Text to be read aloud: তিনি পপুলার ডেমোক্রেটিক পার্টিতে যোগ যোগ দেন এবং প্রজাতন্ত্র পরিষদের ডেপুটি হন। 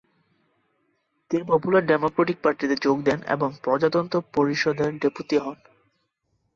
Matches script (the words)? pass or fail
fail